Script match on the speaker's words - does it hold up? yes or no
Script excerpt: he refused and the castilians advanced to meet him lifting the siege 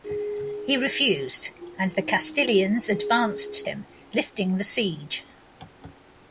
no